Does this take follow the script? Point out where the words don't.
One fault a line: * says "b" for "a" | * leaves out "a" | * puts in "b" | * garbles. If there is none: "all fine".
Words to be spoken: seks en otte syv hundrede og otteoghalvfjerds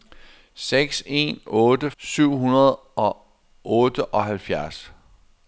all fine